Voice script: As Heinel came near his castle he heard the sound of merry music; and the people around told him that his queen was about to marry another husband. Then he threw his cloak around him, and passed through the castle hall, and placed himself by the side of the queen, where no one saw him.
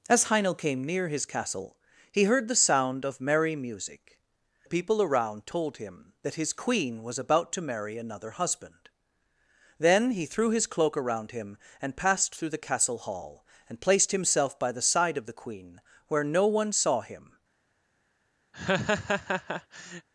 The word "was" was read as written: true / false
true